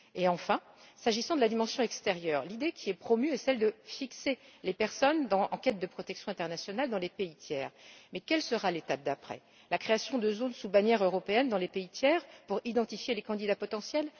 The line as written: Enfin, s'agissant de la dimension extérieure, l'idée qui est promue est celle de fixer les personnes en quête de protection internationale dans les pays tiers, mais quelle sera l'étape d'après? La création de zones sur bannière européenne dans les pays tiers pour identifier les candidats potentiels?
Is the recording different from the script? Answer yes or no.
yes